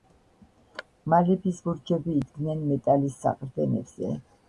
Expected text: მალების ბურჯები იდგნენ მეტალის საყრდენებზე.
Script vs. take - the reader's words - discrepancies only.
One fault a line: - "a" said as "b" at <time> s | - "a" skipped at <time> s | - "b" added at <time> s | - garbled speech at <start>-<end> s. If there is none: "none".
none